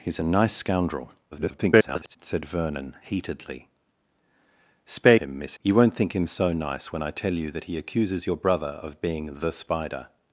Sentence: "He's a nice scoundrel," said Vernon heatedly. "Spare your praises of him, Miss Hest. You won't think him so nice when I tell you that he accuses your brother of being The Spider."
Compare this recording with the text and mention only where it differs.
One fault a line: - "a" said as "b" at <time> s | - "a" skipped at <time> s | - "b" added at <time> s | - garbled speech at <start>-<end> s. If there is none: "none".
- garbled speech at 1.3-2.2 s
- "your praises of" skipped at 5.1 s
- "Hest" skipped at 5.6 s